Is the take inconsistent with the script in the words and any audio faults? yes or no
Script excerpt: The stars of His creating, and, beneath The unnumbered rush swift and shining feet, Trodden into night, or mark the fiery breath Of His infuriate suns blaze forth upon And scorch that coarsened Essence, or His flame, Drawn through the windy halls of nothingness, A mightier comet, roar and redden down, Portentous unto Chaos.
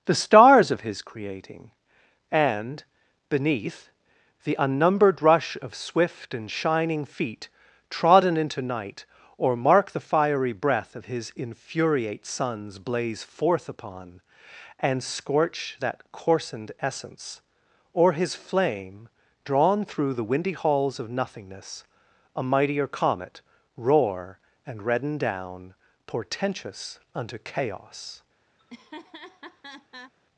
yes